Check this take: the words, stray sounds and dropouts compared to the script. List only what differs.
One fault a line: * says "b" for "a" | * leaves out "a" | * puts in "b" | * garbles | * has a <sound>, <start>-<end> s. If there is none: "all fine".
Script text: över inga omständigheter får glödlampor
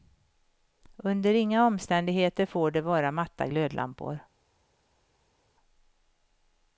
* says "under" for "över"
* puts in "det vara matta"